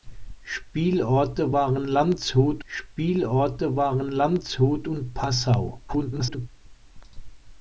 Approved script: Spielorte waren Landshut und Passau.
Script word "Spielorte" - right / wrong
right